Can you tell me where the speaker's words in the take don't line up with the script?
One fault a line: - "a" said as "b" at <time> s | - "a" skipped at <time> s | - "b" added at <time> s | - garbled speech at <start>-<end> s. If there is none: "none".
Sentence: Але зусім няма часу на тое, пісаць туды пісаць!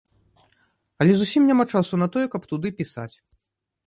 - "пісаць" said as "каб" at 2.4 s